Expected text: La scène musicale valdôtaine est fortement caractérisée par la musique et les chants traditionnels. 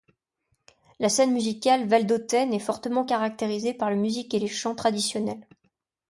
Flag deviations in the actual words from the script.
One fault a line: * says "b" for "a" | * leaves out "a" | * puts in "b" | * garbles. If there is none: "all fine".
all fine